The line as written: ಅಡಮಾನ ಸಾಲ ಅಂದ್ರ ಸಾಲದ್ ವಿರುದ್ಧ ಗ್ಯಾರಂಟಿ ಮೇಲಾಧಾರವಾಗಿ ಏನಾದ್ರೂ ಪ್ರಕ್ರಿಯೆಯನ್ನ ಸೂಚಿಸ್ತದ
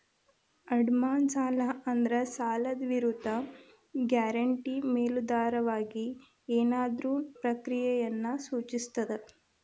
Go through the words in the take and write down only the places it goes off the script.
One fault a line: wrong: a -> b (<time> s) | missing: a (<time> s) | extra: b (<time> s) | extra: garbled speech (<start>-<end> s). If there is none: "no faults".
no faults